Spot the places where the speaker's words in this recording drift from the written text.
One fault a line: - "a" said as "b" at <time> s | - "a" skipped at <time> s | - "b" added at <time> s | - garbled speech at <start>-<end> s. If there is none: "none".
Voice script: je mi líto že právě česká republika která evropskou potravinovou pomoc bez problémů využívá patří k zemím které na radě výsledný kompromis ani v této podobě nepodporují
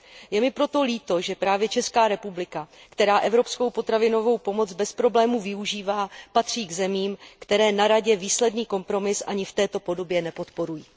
- "proto" added at 0.5 s